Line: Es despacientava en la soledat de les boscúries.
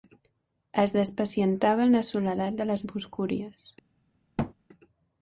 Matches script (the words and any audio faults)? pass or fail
fail